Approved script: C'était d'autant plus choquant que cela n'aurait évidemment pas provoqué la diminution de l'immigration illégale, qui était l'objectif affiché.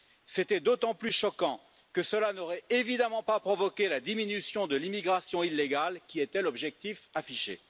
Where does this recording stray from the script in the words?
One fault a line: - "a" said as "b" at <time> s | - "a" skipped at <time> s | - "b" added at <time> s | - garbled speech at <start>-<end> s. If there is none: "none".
none